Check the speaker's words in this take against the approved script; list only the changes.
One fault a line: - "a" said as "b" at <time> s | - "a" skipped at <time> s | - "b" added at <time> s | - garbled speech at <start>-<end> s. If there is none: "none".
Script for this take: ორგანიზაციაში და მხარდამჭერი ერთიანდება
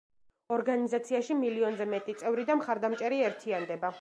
- "მილიონზე მეტი წევრი" added at 1.4 s